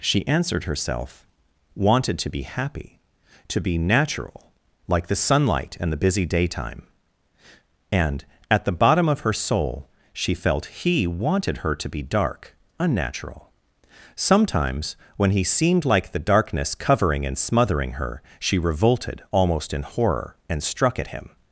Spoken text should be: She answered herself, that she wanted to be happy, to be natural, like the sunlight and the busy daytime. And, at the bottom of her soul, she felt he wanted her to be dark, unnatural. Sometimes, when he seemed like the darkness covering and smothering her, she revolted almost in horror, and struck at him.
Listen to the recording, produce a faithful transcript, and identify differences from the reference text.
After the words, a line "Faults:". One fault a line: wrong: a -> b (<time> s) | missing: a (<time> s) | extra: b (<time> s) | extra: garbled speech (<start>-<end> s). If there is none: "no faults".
She answered herself, wanted to be happy, to be natural, like the sunlight and the busy daytime. And, at the bottom of her soul, she felt he wanted her to be dark, unnatural. Sometimes, when he seemed like the darkness covering and smothering her, she revolted almost in horror, and struck at him.
Faults:
missing: that she (1.2 s)